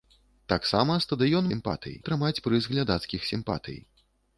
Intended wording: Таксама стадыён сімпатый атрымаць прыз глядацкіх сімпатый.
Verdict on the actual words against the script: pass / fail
pass